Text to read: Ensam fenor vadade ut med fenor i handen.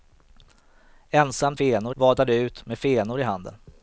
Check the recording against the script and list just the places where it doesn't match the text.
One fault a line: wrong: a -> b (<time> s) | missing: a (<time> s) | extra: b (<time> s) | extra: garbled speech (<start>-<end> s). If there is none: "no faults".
no faults